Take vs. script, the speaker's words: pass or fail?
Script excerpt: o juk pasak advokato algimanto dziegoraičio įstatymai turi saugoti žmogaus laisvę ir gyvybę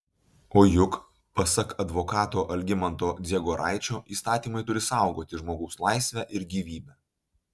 pass